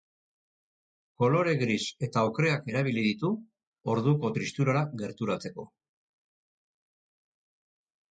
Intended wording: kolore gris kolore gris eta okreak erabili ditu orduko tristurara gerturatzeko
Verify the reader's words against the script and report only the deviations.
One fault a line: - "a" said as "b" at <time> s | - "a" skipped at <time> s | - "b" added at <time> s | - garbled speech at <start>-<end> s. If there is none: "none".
- "kolore gris" skipped at 1.8 s